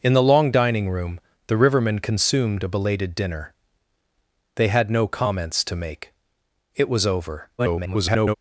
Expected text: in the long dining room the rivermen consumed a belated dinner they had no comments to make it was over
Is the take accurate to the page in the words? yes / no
no